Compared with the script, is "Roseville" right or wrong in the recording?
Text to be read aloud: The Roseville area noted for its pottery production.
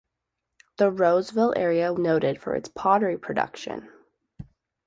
right